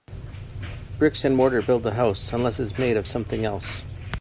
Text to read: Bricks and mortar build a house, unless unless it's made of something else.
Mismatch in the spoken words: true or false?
true